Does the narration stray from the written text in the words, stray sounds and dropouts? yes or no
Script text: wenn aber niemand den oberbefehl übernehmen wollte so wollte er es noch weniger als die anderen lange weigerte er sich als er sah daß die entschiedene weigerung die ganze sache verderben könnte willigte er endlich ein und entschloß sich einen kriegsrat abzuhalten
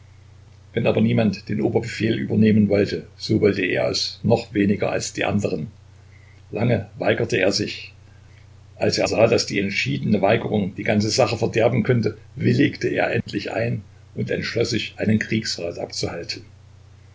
yes